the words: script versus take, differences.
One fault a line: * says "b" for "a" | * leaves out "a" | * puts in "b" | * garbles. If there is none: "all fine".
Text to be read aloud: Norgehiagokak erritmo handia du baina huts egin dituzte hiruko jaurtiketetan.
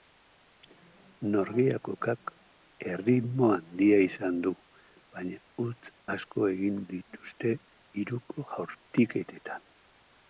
* puts in "izan"
* puts in "asko"